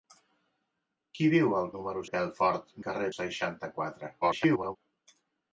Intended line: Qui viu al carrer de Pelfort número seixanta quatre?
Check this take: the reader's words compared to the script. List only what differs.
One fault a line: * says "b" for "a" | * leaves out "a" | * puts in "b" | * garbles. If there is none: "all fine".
* says "número" for "carrer"
* says "carrer" for "número"
* garbles